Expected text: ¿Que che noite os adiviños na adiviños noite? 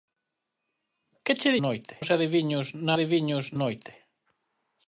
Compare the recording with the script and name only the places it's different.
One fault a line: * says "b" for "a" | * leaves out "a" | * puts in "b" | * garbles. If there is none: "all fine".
all fine